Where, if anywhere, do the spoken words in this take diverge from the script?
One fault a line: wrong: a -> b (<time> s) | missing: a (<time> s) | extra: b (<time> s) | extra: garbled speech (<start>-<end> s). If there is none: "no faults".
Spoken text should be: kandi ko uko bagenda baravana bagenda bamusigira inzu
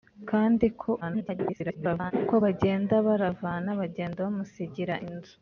extra: garbled speech (1.0-2.1 s)